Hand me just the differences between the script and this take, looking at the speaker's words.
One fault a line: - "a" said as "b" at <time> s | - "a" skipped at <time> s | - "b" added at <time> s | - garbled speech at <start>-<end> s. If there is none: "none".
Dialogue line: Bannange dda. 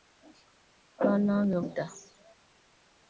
none